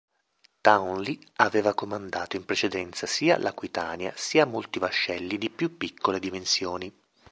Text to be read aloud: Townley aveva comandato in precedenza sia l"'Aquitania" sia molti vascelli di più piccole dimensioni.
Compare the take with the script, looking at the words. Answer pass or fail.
pass